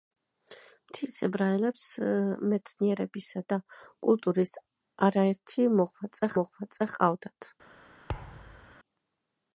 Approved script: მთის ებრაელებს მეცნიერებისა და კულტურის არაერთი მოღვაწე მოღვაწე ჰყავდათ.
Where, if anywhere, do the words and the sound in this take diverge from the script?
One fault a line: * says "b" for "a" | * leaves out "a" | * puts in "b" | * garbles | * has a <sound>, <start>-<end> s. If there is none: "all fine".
* has a thud, 8.1-8.7 s